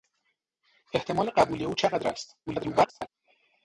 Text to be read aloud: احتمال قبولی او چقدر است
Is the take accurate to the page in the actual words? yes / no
no